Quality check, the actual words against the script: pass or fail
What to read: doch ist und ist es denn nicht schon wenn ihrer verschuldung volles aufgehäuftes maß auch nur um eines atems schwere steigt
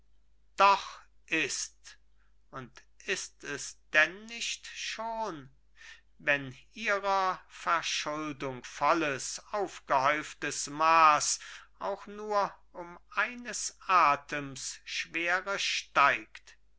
pass